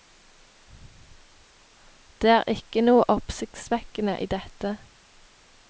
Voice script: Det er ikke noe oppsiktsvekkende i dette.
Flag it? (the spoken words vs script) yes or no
no